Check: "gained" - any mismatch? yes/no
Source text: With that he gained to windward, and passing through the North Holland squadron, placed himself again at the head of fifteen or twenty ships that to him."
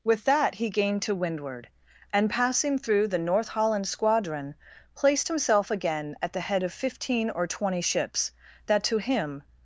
no